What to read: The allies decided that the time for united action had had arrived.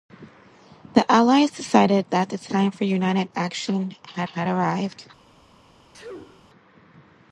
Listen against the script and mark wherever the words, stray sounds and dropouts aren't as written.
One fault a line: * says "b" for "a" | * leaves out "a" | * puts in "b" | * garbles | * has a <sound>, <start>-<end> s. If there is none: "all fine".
* has a sneeze, 5.9-6.5 s